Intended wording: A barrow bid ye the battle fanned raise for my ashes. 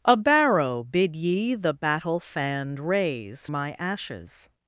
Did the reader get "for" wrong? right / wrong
wrong